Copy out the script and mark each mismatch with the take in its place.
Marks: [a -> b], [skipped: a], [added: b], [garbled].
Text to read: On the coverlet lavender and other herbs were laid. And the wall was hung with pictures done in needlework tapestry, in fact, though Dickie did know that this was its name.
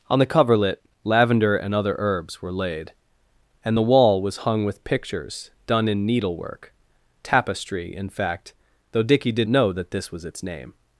On the coverlet lavender and other herbs were laid. And the wall was hung with pictures done in needlework tapestry, in fact, though Dickie did know that this was its name.